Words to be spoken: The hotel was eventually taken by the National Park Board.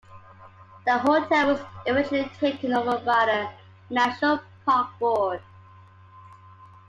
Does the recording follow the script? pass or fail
fail